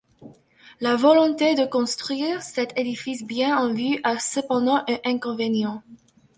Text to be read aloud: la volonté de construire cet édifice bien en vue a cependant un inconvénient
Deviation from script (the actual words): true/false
false